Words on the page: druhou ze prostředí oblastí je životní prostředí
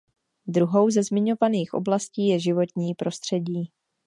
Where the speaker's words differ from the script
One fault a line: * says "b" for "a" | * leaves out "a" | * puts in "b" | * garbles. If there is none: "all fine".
* says "zmiňovaných" for "prostředí"